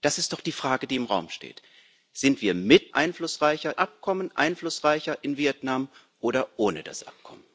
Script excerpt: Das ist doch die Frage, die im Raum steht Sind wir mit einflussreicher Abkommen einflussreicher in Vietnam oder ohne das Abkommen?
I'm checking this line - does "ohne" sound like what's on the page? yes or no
yes